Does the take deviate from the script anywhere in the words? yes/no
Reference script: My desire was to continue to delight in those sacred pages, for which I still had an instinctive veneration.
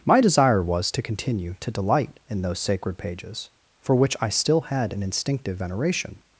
no